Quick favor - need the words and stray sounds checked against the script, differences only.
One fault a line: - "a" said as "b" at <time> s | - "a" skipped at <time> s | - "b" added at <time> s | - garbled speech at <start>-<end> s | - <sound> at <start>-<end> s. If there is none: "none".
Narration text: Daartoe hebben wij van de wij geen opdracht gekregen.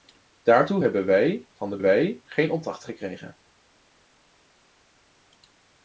none